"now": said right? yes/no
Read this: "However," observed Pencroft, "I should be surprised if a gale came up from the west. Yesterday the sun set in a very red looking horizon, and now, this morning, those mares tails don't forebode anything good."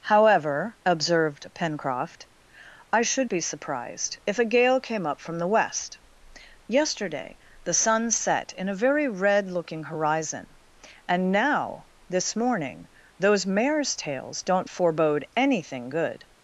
yes